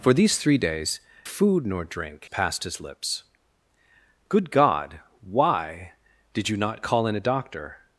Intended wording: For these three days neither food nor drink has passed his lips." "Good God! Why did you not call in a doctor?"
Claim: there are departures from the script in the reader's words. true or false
true